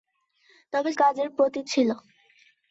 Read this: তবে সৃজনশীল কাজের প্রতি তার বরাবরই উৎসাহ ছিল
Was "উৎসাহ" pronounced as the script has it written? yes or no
no